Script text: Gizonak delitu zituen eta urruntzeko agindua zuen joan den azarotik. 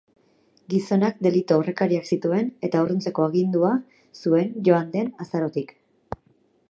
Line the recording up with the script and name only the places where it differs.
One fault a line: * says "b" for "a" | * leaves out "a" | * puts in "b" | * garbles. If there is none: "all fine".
* puts in "aurrekariak"